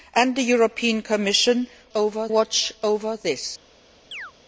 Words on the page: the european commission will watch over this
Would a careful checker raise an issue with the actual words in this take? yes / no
yes